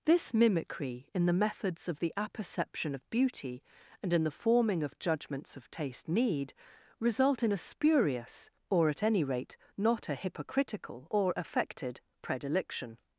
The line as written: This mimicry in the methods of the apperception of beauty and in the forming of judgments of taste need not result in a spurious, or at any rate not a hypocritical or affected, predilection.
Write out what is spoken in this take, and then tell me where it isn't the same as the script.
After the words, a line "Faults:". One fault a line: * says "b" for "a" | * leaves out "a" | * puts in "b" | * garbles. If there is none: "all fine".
This mimicry in the methods of the apperception of beauty and in the forming of judgments of taste need result in a spurious, or at any rate not a hypocritical or affected, predilection.
Faults:
* leaves out "not"